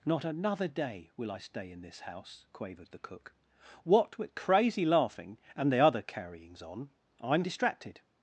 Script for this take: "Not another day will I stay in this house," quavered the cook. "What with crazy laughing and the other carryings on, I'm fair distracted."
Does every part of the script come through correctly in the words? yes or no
no